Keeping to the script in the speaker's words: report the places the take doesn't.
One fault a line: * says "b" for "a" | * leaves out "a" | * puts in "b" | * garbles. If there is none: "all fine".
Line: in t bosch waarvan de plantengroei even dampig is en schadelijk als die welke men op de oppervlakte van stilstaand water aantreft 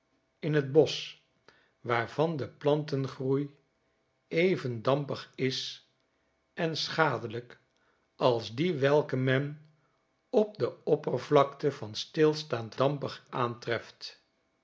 * says "dampig" for "water"